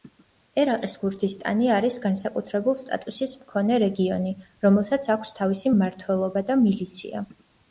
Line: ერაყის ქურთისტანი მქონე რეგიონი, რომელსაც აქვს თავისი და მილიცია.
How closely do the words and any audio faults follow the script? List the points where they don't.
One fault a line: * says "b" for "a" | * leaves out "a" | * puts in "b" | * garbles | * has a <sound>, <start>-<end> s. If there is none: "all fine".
* puts in "არის განსაკუთრებულ სტატუსის"
* puts in "მმართველობა"